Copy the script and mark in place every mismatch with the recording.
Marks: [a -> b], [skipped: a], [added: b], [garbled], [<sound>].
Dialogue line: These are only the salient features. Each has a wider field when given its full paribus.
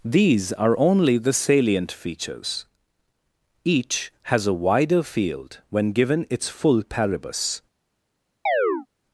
These are only the salient features. Each has a wider field when given its full paribus. [chirp]